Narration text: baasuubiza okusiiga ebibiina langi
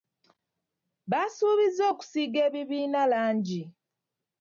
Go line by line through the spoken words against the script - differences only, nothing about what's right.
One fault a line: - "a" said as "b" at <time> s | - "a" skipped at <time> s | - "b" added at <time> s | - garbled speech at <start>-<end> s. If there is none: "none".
none